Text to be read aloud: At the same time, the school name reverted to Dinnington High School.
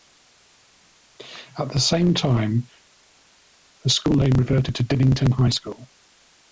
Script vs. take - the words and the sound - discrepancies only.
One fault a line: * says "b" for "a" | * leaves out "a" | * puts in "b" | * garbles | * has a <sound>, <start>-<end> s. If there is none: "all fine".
all fine